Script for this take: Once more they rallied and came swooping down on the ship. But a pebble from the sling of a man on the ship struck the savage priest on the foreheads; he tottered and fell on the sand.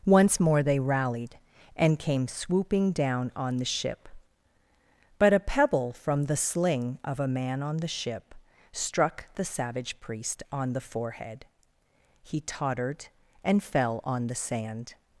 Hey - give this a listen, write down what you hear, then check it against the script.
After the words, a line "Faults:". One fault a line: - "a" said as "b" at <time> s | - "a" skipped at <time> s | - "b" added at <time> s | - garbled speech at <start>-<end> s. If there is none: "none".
Once more they rallied and came swooping down on the ship. But a pebble from the sling of a man on the ship struck the savage priest on the forehead; he tottered and fell on the sand.
Faults:
- "foreheads" said as "forehead" at 10.8 s